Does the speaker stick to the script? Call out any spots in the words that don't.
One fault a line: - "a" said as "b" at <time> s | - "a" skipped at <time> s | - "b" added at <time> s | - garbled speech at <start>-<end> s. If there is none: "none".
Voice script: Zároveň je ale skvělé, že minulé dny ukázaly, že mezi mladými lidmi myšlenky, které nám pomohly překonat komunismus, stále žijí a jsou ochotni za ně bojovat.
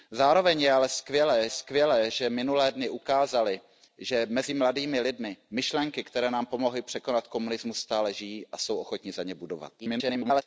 - "skvělé" added at 1.5 s
- garbled speech at 9.8-10.4 s